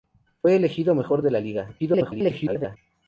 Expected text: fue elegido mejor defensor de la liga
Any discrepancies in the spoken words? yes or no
yes